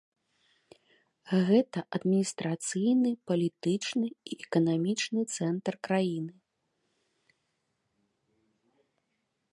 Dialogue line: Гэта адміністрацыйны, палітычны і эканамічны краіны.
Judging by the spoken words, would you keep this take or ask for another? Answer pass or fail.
fail